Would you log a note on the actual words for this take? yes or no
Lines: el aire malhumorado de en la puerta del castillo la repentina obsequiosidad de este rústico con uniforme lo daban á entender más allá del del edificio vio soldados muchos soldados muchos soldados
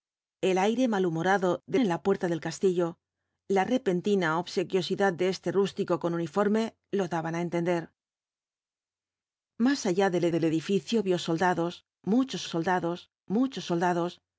no